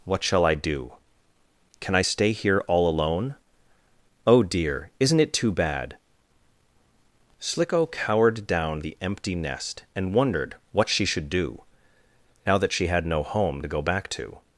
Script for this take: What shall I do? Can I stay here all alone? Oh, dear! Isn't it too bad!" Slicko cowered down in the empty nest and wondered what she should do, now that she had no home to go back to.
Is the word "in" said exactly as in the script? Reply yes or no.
no